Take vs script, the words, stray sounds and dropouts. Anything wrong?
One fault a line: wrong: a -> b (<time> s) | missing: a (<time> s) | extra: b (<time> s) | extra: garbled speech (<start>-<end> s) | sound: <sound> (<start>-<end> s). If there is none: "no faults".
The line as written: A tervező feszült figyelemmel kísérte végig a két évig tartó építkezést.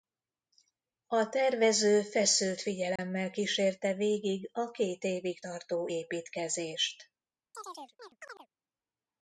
sound: dropout (3.0-3.0 s)
sound: chirp (7.5-8.5 s)